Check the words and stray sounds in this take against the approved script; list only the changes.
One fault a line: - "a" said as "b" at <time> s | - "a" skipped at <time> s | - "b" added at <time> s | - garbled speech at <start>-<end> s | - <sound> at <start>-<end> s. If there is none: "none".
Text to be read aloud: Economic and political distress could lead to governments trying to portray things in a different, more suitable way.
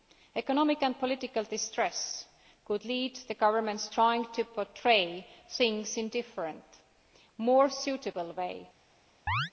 - chirp at 9.3-9.5 s